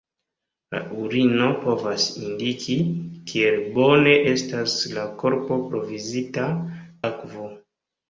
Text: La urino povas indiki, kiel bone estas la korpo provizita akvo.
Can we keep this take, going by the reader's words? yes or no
yes